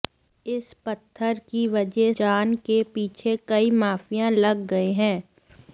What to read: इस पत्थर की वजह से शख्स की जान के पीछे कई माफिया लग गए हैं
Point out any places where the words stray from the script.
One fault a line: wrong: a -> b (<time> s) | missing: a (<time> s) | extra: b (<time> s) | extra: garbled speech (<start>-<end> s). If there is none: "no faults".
missing: से शख्स की (2.1 s)